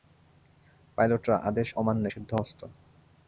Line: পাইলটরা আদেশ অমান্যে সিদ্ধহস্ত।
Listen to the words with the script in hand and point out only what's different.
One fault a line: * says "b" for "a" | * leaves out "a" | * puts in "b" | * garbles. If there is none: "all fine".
all fine